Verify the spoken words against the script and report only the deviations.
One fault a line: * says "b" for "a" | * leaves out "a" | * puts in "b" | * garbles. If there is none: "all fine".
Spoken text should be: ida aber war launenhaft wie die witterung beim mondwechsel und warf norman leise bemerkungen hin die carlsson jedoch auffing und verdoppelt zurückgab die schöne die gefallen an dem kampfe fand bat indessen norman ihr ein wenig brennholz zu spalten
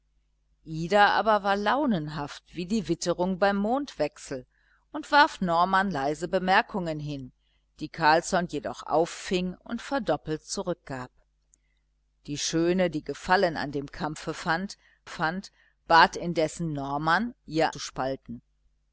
* puts in "fand"
* leaves out "ein wenig brennholz"